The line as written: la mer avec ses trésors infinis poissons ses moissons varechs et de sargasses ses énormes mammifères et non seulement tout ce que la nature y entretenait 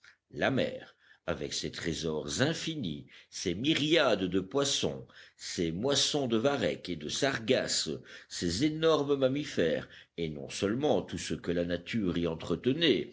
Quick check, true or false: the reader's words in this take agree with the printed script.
false